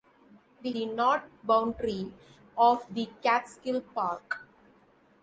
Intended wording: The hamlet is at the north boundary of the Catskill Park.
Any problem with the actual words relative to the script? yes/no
yes